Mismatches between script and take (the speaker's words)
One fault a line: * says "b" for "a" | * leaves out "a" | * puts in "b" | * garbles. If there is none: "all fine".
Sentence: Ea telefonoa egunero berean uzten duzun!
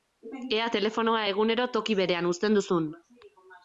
* puts in "toki"